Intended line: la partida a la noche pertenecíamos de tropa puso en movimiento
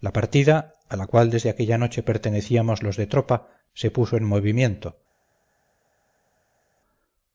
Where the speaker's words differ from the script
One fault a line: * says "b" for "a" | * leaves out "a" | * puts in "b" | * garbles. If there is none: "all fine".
* puts in "cual desde aquella"
* puts in "los"
* puts in "se"